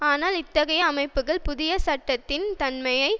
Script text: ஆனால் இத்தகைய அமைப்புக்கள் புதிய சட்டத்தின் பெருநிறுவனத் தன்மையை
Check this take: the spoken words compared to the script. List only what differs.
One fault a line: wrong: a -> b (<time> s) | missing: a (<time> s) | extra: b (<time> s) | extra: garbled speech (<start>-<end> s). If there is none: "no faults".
missing: பெருநிறுவனத் (2.5 s)